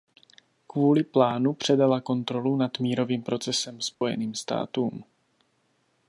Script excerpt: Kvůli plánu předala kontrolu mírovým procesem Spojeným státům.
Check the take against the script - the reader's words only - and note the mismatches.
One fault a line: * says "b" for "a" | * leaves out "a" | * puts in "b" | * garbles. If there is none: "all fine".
* puts in "nad"